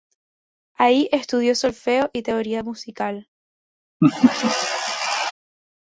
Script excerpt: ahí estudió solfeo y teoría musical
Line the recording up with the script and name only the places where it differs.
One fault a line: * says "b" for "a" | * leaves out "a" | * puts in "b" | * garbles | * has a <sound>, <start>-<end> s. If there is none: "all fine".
* has a laugh, 4.0-5.3 s